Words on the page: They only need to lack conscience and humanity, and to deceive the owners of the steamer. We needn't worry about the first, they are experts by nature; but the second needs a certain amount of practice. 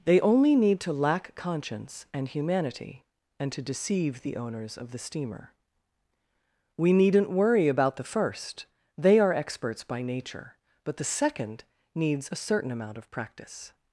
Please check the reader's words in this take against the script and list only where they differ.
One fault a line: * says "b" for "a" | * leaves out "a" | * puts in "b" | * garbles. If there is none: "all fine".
all fine